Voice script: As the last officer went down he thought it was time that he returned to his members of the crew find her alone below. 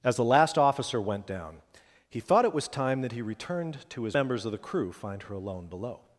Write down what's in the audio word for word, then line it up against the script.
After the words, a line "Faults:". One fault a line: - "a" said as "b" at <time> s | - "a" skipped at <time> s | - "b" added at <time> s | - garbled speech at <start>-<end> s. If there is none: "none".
As the last officer went down he thought it was time that he returned to his members of the crew find her alone below.
Faults:
none